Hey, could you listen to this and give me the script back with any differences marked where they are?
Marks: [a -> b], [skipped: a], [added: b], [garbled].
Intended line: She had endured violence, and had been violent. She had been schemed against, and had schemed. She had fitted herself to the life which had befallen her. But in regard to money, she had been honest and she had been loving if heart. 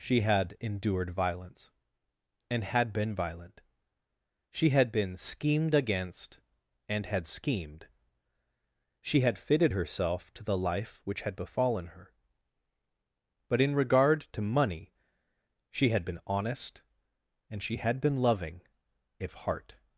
She had endured violence, and had been violent. She had been schemed against, and had schemed. She had fitted herself to the life which had befallen her. But in regard to money, she had been honest and she had been loving if heart.